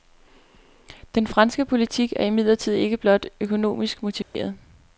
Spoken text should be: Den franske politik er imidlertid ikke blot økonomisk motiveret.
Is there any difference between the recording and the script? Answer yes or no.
no